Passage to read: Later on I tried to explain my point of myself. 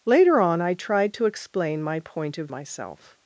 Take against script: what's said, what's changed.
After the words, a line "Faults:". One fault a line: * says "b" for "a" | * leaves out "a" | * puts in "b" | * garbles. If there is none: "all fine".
Later on I tried to explain my point of myself.
Faults:
all fine